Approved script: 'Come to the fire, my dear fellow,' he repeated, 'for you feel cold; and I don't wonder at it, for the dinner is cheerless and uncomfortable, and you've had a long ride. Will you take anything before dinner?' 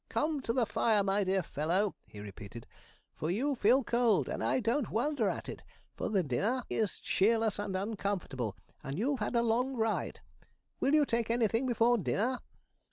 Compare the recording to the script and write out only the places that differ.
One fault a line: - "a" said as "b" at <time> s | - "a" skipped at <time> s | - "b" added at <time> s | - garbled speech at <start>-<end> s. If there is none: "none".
none